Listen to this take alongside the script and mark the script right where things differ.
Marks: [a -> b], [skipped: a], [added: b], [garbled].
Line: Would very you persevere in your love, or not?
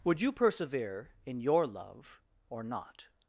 Would [skipped: very] you persevere in your love, or not?